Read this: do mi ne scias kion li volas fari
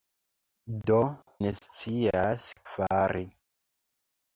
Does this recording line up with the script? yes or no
no